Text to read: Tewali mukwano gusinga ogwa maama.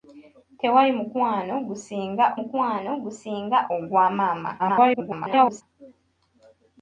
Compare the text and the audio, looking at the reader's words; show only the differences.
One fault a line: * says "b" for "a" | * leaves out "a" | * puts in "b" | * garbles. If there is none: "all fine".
* puts in "mukwano gusinga"
* garbles